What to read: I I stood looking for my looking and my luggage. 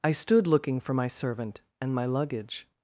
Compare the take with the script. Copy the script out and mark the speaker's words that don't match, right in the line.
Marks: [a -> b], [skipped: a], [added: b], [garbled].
I [skipped: I] stood looking for my [looking -> servant] and my luggage.